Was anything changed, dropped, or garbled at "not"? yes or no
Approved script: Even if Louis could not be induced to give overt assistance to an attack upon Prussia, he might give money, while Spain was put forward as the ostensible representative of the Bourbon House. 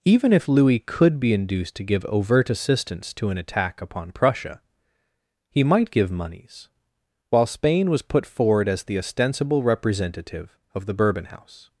yes